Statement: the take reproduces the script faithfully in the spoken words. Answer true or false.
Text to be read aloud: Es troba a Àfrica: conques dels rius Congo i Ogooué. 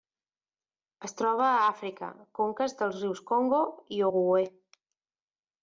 true